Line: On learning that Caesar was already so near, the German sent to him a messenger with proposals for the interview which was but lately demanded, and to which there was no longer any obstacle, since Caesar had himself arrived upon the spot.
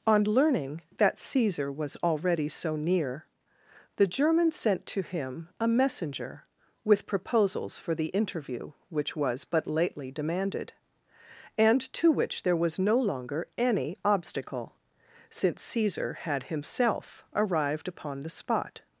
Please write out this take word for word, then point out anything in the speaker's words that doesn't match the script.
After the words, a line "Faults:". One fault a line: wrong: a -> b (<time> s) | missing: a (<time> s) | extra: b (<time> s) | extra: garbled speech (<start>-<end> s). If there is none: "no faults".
On learning that Caesar was already so near, the German sent to him a messenger with proposals for the interview which was but lately demanded, and to which there was no longer any obstacle, since Caesar had himself arrived upon the spot.
Faults:
no faults